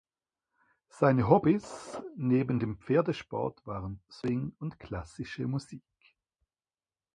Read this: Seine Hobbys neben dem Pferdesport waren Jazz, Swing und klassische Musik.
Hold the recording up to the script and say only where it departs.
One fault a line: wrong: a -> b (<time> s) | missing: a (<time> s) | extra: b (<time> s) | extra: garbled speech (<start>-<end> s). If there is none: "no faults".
missing: Jazz (4.0 s)